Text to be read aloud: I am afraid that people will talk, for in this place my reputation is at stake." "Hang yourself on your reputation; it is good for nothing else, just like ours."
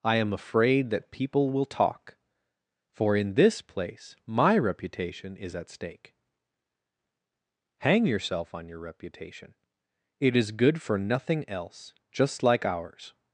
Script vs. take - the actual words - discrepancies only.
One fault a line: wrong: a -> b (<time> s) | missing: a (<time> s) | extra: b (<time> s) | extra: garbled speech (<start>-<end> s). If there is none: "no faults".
no faults